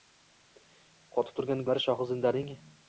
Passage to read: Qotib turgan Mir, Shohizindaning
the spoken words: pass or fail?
pass